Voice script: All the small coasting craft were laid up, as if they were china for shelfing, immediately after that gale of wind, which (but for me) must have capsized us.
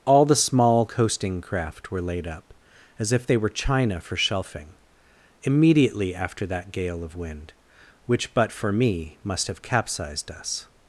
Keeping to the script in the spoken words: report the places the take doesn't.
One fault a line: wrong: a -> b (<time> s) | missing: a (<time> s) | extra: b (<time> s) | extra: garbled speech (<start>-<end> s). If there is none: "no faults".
no faults